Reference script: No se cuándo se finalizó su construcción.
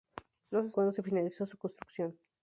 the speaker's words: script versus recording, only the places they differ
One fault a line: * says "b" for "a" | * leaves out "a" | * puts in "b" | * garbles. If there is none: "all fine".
all fine